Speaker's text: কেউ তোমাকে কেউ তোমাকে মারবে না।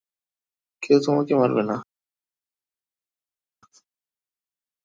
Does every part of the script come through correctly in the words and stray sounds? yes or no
no